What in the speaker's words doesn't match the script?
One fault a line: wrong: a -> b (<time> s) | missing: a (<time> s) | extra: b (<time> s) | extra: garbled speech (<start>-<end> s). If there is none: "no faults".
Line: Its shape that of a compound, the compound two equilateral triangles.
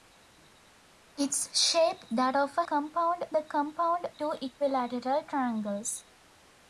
no faults